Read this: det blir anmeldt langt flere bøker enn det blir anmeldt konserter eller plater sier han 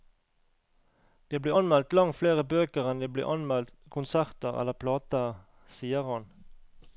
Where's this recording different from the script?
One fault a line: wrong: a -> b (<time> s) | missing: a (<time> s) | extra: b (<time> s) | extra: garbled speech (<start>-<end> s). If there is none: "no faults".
no faults